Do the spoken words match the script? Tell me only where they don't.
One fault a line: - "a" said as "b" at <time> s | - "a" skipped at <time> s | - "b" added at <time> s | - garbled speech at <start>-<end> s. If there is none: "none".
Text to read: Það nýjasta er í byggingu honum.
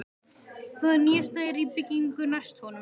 - "næst" added at 2.4 s